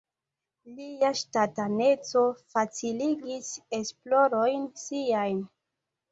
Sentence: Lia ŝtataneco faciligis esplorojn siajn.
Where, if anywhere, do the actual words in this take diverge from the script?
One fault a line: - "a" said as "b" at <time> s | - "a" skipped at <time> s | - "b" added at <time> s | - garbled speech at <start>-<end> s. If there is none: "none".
none